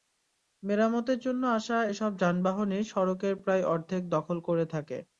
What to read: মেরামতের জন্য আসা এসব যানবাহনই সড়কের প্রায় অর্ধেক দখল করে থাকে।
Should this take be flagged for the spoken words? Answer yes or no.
no